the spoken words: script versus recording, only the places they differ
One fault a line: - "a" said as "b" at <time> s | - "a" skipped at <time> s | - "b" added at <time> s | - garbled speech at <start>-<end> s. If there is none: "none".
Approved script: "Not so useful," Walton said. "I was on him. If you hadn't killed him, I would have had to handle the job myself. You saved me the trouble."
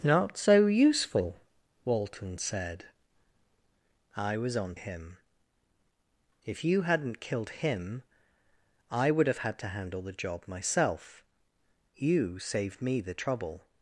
none